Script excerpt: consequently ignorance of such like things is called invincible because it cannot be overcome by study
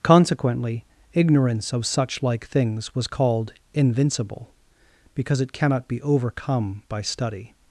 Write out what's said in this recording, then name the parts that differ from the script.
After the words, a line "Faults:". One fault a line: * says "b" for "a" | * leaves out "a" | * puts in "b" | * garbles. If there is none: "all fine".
consequently ignorance of such like things was called invincible because it cannot be overcome by study
Faults:
* says "was" for "is"